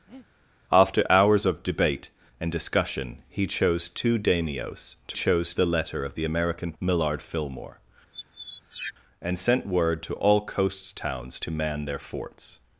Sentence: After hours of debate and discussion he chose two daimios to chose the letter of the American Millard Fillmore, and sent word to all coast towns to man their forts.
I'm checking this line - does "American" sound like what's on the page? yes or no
yes